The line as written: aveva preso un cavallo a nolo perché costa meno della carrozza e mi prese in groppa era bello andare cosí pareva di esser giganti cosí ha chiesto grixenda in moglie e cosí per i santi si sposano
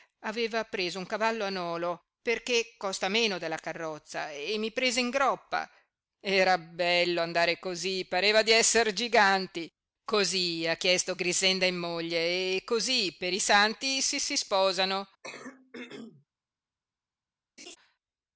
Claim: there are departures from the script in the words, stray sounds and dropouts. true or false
true